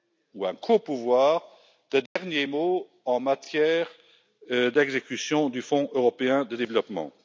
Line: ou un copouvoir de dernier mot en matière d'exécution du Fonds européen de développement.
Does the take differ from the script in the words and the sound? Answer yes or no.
yes